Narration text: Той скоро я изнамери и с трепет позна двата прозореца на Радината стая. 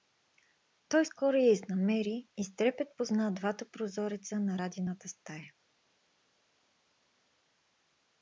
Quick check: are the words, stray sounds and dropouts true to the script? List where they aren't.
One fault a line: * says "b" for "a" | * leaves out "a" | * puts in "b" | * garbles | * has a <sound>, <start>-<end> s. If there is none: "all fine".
all fine